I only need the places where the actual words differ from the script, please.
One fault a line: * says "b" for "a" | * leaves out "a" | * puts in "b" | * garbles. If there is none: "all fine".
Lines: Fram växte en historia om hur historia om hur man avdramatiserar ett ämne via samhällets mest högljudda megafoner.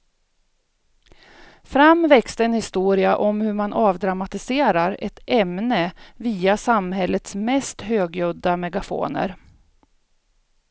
* leaves out "historia om hur"